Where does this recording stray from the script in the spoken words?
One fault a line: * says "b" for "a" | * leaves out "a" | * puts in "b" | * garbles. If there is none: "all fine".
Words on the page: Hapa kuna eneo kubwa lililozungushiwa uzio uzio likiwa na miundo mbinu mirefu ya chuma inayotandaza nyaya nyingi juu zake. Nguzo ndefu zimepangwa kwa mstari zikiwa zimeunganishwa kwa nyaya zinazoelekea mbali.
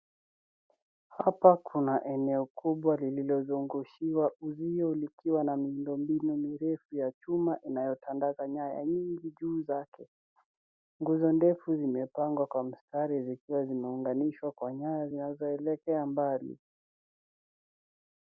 * leaves out "uzio"